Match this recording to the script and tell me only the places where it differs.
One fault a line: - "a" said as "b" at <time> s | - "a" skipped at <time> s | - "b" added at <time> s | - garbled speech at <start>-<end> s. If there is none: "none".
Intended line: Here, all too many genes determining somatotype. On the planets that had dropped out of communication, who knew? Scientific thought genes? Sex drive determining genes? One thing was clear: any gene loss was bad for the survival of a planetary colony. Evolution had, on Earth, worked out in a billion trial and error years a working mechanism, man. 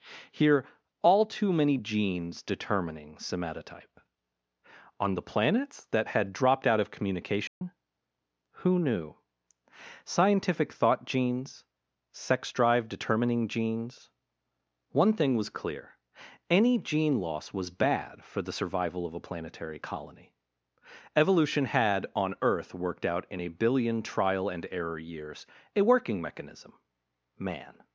none